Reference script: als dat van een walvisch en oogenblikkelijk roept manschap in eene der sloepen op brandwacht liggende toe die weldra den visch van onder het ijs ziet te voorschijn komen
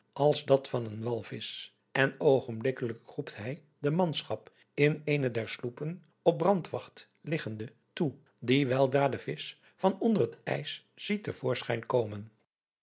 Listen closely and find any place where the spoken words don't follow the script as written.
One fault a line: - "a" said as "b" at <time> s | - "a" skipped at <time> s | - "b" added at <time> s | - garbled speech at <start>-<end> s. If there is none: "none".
- "hij de" added at 3.4 s